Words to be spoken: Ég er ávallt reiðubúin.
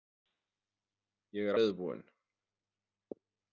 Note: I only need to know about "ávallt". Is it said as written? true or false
false